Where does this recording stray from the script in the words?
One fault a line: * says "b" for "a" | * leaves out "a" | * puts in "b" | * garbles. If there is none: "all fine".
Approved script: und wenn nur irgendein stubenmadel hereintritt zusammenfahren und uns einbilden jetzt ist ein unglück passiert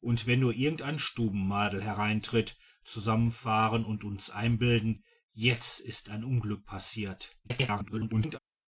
* garbles